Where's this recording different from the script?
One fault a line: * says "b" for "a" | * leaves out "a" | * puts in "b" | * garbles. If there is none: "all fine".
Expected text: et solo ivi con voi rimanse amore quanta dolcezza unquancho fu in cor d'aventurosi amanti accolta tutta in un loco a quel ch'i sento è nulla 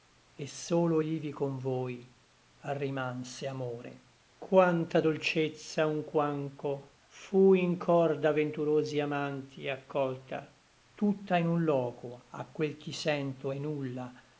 all fine